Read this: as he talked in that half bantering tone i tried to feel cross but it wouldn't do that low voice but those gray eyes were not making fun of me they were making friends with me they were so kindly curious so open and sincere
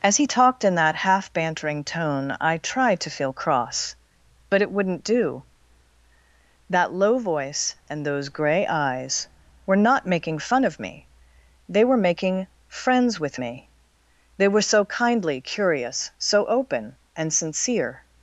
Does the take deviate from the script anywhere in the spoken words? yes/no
yes